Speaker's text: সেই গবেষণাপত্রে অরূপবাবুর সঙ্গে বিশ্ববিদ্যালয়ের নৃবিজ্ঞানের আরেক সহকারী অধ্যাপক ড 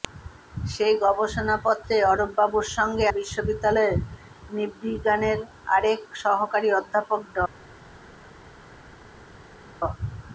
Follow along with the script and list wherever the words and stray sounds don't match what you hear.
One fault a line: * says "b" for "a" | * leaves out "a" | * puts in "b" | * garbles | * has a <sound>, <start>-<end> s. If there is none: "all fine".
all fine